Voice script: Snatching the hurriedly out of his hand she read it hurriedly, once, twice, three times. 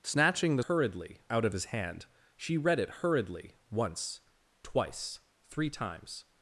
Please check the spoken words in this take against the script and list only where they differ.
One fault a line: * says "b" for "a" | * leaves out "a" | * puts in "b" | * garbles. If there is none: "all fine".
all fine